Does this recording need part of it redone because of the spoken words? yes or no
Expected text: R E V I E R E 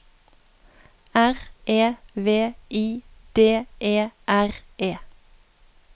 yes